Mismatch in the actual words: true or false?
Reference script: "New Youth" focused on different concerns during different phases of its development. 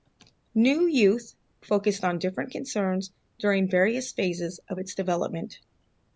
true